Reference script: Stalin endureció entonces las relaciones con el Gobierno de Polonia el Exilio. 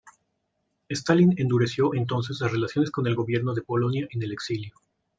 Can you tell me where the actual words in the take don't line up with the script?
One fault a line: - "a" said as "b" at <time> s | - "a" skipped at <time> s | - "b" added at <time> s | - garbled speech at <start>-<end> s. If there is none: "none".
- "en" added at 4.1 s